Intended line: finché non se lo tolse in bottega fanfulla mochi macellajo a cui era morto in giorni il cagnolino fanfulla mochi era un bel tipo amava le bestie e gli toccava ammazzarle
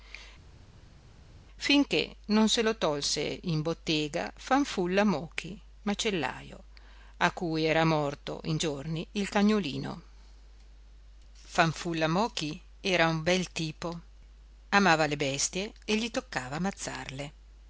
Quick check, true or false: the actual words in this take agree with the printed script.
true